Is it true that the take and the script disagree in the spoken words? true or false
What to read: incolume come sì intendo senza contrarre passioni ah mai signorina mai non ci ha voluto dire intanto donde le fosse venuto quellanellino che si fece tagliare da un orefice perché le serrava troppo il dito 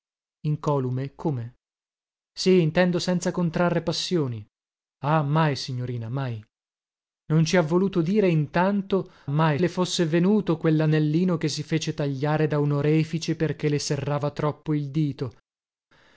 true